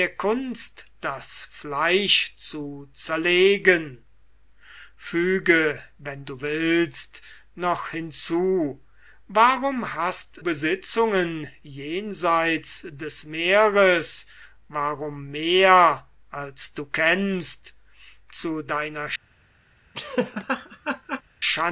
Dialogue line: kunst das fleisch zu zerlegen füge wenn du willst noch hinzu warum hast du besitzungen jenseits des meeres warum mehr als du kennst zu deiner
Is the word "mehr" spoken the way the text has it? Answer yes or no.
yes